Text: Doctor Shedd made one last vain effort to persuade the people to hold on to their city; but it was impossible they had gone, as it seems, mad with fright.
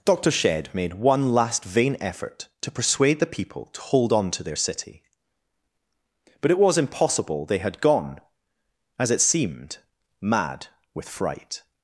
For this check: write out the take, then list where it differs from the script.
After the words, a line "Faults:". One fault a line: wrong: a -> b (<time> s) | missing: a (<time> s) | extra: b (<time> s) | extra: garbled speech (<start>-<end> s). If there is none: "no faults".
Doctor Shedd made one last vain effort to persuade the people to hold on to their city; but it was impossible they had gone, as it seemed, mad with fright.
Faults:
wrong: seems -> seemed (9.2 s)